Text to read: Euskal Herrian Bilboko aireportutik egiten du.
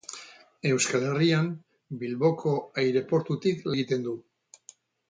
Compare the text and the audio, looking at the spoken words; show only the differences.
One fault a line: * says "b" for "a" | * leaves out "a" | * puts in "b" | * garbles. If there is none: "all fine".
all fine